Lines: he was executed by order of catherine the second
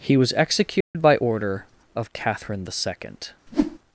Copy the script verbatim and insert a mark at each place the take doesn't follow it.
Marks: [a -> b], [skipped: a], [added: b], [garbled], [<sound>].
he was executed [dropout] by order of catherine the second [whoosh]